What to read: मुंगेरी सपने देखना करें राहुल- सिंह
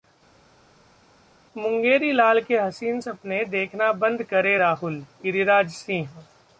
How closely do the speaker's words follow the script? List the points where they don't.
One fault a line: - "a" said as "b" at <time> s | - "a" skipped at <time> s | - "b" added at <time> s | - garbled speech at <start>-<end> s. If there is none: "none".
- "लाल के हसीन" added at 2.1 s
- "बंद" added at 4.0 s
- "गिरिराज" added at 5.2 s